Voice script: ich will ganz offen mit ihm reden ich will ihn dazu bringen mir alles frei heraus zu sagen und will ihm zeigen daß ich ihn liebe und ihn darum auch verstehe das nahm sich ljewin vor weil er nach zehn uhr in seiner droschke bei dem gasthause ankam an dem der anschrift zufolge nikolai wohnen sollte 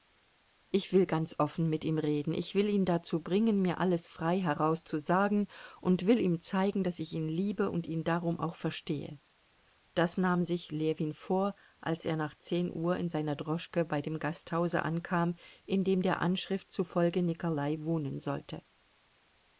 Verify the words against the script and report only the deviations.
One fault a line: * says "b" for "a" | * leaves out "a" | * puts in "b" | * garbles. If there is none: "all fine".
* says "als" for "weil"
* says "in" for "an"